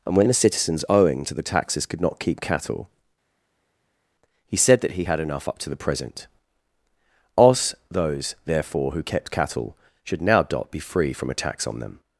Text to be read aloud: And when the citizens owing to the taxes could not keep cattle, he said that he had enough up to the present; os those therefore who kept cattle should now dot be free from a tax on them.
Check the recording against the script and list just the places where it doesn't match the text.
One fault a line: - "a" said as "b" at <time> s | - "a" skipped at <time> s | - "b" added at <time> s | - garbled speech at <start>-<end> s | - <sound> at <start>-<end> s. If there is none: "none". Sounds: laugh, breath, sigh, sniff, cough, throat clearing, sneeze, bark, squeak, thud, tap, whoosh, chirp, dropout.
none